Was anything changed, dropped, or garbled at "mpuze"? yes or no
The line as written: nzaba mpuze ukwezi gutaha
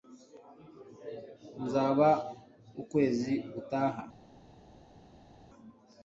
yes